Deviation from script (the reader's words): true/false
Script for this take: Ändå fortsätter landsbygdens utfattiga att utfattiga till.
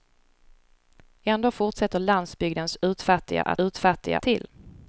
false